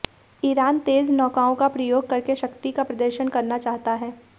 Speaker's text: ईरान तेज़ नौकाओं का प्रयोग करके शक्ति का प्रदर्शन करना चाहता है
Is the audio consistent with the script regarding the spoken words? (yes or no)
yes